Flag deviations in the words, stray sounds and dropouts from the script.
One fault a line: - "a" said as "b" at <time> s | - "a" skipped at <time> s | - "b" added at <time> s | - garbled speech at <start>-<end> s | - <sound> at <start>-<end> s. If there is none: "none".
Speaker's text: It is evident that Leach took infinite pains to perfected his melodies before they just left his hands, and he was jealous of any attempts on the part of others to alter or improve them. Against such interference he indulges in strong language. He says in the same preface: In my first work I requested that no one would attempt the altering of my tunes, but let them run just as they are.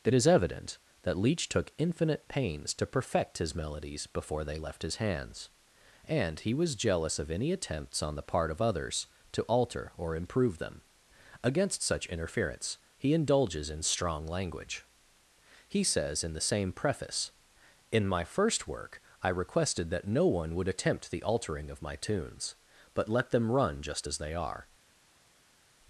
- "perfected" said as "perfect" at 2.9 s
- "just" skipped at 4.6 s